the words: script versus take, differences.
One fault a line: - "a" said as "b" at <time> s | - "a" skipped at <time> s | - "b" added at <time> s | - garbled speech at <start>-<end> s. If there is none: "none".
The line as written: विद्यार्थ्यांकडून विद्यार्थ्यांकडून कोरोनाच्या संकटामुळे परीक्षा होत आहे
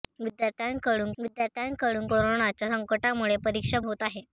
none